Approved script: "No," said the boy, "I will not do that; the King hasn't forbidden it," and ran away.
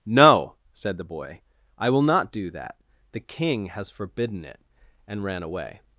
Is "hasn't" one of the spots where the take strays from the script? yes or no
yes